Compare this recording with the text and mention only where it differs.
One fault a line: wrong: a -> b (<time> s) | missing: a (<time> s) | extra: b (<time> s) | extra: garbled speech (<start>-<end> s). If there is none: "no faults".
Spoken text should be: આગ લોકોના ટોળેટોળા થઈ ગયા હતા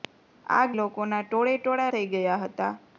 no faults